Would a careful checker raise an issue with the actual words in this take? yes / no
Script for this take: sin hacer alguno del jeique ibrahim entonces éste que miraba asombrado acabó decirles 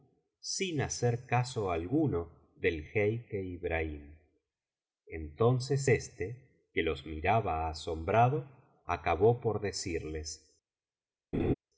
yes